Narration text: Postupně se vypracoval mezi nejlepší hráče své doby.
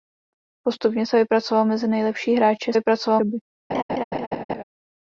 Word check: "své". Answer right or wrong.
wrong